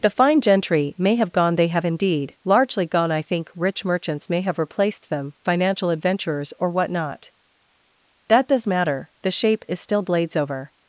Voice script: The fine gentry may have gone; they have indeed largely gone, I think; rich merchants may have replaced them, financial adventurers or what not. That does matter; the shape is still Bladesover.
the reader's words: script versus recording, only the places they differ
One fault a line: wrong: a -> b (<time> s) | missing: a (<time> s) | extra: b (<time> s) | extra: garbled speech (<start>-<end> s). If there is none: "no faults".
no faults